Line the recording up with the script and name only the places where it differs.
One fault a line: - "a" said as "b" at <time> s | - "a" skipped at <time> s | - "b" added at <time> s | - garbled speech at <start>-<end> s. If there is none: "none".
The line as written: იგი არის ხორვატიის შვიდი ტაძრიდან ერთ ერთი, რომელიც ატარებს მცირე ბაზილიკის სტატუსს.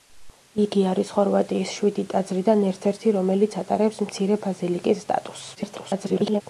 - garbled speech at 5.5-6.4 s